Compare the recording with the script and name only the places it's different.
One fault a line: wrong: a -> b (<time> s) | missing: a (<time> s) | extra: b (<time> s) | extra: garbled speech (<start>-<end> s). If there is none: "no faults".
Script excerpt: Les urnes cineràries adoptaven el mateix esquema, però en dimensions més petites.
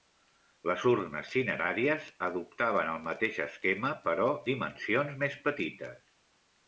missing: en (4.3 s)